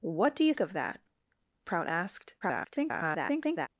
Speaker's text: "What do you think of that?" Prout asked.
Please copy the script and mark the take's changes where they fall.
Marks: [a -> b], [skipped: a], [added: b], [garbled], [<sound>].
"What do you [skipped: think] of that?" Prout asked. [garbled]